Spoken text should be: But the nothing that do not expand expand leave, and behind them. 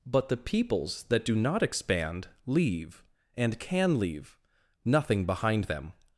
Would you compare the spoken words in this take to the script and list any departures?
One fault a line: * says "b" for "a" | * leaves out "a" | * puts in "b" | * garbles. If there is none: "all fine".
* says "peoples" for "nothing"
* says "leave and can" for "expand"
* says "nothing" for "and"